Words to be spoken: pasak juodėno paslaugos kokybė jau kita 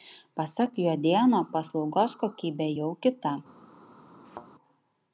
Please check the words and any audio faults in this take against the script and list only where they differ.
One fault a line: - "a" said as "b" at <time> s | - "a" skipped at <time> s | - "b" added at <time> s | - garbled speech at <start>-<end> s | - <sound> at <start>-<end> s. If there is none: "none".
- thud at 4.2-4.5 s